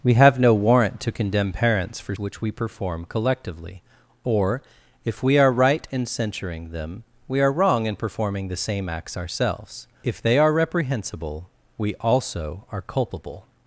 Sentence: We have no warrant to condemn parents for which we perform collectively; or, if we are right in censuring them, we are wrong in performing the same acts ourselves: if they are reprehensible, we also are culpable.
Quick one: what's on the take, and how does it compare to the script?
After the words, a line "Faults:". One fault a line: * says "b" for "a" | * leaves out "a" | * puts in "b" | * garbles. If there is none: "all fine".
We have no warrant to condemn parents for which we perform collectively; or, if we are right in censuring them, we are wrong in performing the same acts ourselves: if they are reprehensible, we also are culpable.
Faults:
all fine